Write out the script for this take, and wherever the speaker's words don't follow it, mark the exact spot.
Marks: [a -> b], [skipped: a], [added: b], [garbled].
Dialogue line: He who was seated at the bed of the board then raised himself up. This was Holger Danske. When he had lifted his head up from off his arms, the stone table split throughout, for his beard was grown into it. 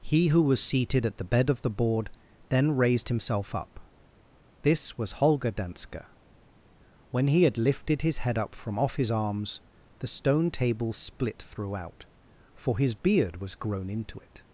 He who was seated at the bed of the board then raised himself up. This was Holger Danske. When he had lifted his head up from off his arms, the stone table split throughout, for his beard was grown into it.